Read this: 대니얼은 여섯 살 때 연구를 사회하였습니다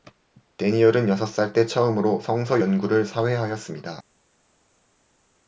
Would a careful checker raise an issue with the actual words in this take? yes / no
yes